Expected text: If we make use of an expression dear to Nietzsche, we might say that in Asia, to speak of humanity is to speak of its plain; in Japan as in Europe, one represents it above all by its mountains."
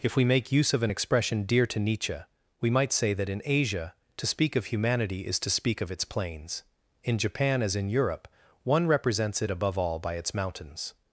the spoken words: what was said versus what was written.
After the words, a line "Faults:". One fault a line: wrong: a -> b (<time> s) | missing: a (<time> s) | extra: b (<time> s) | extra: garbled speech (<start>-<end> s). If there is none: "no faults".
If we make use of an expression dear to Nietzsche, we might say that in Asia, to speak of humanity is to speak of its plains; in Japan as in Europe, one represents it above all by its mountains."
Faults:
wrong: plain -> plains (6.0 s)